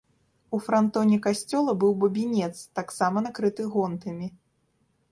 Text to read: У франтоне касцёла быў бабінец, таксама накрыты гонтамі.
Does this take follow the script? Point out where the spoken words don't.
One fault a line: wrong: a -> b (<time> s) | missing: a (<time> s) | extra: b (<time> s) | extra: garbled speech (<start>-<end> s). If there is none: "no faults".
no faults